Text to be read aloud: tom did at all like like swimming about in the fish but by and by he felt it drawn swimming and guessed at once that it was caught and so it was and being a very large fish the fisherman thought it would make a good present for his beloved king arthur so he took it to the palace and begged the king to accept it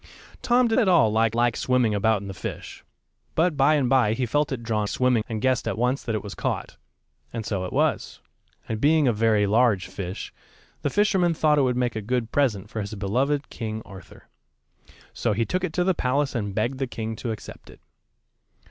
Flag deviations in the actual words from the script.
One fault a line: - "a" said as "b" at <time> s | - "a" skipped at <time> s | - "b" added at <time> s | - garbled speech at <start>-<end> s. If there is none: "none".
none